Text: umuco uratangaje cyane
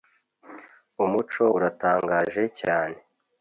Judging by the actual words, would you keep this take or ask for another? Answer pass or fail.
pass